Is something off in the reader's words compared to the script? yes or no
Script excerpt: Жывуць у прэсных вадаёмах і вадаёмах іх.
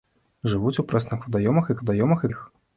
no